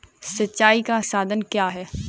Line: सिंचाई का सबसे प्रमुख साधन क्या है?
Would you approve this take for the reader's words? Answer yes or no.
no